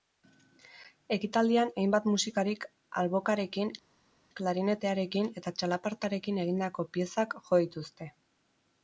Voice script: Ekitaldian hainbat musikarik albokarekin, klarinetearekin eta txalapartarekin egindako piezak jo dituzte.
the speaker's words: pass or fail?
pass